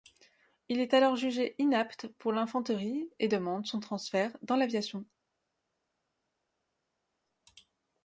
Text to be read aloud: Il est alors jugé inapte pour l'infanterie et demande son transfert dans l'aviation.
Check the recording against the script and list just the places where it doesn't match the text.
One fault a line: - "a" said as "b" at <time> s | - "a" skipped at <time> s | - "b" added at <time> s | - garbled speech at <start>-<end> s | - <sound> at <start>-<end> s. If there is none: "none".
none